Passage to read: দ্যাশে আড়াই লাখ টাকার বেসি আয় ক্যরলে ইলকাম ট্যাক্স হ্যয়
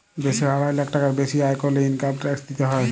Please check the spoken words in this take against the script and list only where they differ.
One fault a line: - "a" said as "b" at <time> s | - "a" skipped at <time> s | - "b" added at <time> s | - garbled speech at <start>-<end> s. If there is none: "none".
- "দিতে" added at 2.5 s